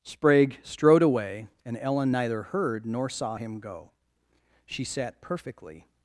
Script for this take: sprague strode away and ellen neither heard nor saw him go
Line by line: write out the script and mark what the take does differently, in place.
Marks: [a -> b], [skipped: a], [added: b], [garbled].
sprague strode away and ellen neither heard nor saw him go [added: she sat perfectly]